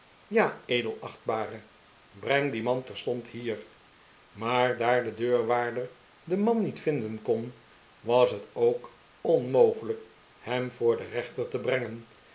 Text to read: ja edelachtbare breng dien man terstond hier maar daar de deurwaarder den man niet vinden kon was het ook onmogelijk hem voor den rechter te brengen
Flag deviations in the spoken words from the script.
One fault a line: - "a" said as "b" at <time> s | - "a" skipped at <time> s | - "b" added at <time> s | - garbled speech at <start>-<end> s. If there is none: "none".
none